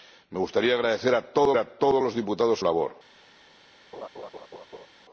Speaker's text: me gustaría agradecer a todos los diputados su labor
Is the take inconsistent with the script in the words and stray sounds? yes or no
yes